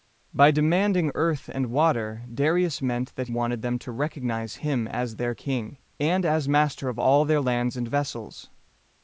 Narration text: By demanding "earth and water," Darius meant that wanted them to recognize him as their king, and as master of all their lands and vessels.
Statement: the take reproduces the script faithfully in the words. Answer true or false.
true